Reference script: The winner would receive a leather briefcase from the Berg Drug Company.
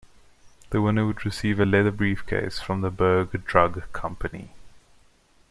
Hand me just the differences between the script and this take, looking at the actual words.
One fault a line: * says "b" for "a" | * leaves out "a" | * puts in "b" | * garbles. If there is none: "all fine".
all fine